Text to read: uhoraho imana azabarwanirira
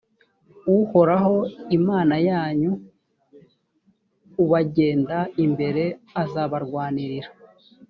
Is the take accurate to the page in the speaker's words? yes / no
no